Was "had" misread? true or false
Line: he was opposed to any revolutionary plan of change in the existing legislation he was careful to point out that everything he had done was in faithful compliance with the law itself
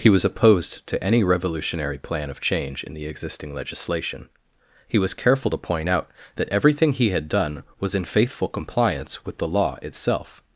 false